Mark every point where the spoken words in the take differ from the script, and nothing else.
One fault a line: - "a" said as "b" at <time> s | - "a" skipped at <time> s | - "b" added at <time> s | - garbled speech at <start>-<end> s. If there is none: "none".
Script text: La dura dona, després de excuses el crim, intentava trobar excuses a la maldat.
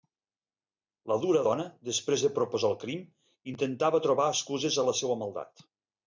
- "excuses" said as "proposar" at 2.4 s
- "seua" added at 5.0 s